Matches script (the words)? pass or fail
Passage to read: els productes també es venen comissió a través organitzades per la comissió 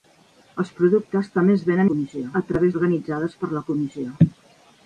pass